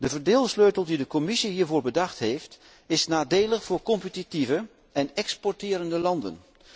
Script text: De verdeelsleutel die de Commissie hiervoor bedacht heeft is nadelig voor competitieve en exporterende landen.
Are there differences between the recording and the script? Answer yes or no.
no